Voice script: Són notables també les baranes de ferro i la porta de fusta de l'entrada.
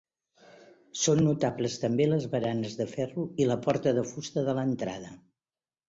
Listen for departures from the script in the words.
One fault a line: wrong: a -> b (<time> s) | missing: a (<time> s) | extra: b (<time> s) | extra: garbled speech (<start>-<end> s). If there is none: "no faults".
no faults